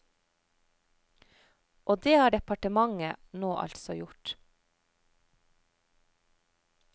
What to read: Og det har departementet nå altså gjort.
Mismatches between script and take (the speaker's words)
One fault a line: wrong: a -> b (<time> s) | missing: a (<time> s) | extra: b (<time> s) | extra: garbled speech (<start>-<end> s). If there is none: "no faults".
no faults